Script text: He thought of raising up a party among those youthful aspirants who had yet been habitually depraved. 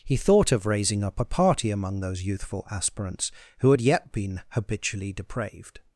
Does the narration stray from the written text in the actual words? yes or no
no